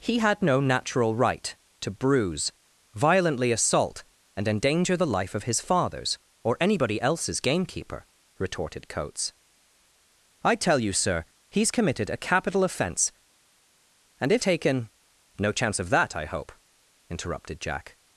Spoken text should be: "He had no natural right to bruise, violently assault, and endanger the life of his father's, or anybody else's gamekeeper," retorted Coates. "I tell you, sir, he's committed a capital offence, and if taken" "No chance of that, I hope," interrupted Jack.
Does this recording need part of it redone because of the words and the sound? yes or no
no